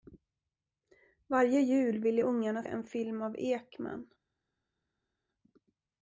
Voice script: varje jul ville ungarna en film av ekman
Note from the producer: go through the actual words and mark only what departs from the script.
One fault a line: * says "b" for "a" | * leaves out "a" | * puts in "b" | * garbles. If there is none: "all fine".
all fine